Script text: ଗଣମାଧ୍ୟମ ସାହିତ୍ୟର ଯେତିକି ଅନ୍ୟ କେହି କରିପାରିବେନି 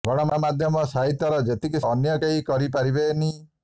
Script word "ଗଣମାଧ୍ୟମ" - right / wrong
right